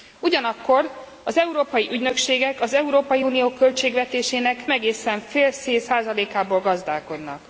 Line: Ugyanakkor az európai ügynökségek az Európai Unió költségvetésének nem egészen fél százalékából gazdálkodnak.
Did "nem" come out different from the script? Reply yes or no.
yes